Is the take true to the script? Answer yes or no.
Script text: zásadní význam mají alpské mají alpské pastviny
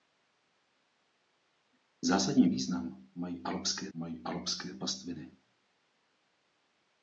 yes